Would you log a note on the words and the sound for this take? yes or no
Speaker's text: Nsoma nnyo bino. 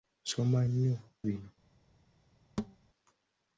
yes